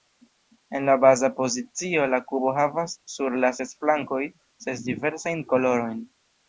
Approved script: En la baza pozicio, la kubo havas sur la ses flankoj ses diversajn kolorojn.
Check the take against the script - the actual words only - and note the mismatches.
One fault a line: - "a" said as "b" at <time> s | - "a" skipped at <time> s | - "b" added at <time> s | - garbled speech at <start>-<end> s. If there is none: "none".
none